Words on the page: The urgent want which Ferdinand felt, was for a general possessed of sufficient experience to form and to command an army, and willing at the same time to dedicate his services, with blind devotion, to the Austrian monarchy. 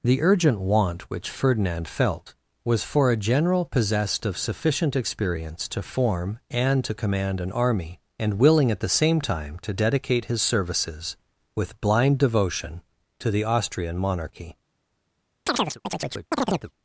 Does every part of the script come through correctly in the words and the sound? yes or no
no